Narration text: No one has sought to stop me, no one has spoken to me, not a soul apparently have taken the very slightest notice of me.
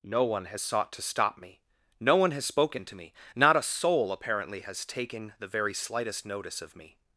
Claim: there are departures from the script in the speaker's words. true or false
true